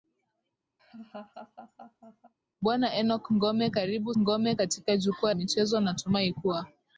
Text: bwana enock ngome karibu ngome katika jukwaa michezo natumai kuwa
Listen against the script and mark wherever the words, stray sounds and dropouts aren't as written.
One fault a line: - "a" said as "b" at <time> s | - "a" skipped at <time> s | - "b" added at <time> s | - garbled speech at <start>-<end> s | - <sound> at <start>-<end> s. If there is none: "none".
- laugh at 0.8-2.3 s